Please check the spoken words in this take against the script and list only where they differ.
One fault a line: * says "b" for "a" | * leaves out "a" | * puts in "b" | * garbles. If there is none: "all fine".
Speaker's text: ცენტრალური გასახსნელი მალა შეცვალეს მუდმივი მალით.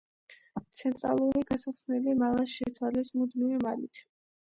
all fine